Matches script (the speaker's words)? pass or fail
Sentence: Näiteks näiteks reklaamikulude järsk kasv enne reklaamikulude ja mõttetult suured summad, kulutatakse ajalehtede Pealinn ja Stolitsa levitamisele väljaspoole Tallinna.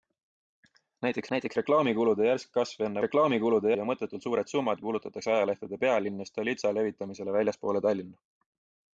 pass